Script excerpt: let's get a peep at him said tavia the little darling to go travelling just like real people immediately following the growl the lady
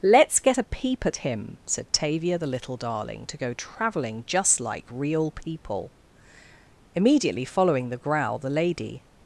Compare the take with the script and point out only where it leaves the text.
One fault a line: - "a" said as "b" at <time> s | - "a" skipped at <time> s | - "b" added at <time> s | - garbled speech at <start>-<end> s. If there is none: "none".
none